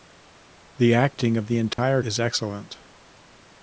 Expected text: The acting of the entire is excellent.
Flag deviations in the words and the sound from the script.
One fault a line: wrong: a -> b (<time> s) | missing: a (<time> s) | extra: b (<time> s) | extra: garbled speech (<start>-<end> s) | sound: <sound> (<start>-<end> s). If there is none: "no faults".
sound: dropout (1.7-1.8 s)